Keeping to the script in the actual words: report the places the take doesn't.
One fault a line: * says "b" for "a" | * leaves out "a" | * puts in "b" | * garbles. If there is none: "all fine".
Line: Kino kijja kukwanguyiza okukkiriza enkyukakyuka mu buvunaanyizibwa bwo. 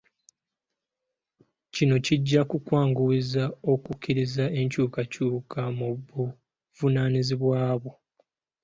all fine